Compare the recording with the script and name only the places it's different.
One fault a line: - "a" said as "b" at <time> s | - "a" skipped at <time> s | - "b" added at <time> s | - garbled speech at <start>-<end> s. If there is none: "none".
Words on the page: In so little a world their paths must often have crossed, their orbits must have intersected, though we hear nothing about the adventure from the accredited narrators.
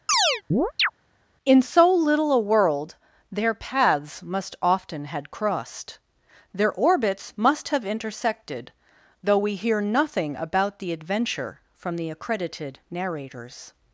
- "have" said as "had" at 5.1 s